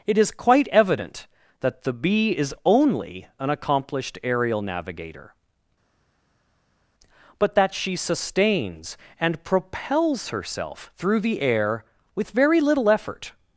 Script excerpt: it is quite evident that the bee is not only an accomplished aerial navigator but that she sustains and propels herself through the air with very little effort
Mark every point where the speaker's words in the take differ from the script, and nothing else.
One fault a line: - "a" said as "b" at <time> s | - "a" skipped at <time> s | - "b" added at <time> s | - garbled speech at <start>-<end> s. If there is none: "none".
- "not" skipped at 2.5 s